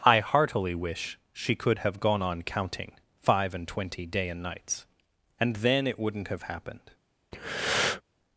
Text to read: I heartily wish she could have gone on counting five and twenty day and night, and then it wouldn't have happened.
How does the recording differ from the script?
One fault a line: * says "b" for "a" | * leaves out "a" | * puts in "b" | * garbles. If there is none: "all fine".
* says "nights" for "night"